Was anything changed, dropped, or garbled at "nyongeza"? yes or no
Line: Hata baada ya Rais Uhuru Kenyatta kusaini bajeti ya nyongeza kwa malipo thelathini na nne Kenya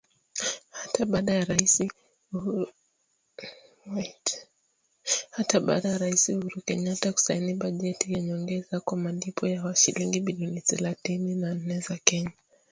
no